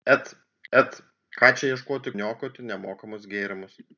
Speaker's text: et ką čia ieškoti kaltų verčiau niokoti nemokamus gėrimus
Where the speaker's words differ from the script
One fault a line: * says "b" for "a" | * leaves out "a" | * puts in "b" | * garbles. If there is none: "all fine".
* puts in "et"
* leaves out "kaltų verčiau"